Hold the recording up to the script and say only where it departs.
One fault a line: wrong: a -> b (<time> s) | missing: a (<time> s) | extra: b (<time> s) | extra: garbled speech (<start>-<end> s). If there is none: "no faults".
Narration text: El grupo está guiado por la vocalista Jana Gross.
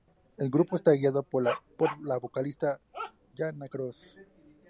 no faults